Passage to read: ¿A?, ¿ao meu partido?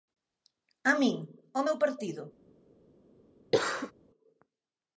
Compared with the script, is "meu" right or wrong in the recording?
right